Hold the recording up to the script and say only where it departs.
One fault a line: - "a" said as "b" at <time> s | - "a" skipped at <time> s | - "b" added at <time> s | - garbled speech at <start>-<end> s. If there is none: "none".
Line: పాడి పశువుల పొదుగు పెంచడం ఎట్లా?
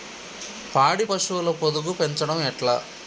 none